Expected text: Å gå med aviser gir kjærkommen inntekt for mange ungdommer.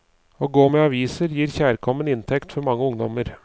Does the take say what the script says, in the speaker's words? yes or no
yes